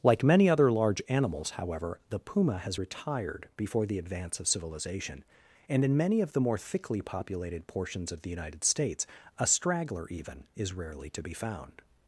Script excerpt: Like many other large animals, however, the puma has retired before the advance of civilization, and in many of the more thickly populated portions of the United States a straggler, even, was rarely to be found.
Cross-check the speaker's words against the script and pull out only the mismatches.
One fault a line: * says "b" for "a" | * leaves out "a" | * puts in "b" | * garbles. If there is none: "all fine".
* says "is" for "was"